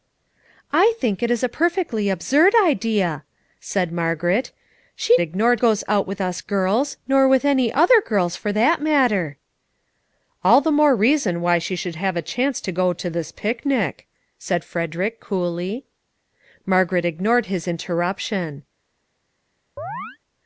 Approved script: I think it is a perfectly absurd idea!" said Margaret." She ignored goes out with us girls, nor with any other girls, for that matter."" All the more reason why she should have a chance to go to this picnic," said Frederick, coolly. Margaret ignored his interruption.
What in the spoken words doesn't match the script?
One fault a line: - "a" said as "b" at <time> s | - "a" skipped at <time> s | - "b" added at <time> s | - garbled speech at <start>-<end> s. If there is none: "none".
none